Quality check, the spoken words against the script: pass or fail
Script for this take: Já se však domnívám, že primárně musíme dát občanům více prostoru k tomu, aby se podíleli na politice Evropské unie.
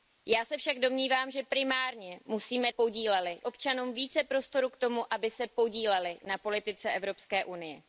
fail